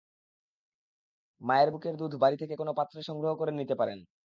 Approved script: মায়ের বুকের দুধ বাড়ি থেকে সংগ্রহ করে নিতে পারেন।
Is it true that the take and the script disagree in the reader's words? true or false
true